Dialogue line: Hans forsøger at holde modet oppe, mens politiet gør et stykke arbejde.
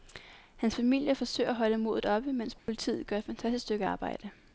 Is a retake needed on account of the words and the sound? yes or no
yes